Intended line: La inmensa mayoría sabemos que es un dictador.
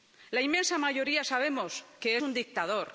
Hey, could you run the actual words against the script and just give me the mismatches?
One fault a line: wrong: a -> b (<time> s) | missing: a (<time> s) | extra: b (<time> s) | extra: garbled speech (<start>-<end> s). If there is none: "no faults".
missing: es (2.2 s)